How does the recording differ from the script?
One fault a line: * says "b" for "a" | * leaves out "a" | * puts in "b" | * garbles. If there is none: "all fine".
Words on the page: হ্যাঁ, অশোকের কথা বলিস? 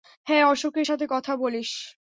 * puts in "সাথে"